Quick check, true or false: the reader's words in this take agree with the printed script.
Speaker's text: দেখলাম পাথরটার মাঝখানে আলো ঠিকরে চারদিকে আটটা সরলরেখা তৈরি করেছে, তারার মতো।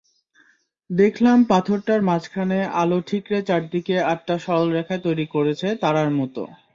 true